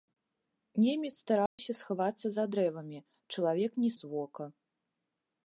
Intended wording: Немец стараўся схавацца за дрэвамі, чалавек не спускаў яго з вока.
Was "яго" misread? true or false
true